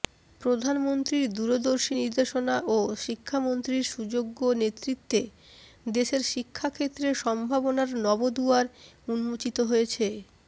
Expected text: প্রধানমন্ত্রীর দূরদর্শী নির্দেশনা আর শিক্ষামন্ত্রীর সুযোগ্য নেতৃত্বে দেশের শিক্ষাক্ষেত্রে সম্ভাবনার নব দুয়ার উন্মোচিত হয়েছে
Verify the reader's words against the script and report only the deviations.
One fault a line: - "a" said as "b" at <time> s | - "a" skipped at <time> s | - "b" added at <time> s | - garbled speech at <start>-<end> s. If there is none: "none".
- "আর" said as "ও" at 2.7 s